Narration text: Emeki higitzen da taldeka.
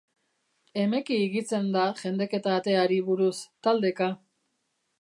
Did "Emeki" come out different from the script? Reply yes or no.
no